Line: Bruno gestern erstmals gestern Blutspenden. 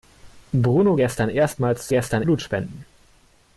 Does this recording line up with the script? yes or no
yes